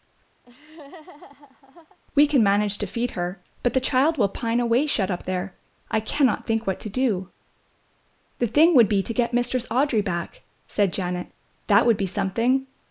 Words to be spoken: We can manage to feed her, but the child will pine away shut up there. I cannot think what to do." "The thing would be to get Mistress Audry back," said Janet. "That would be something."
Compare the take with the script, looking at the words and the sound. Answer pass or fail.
fail